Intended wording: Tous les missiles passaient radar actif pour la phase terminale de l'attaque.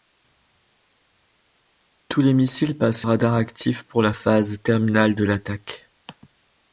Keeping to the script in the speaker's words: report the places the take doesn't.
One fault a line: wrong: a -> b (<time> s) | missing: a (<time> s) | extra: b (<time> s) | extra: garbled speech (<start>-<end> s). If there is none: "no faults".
no faults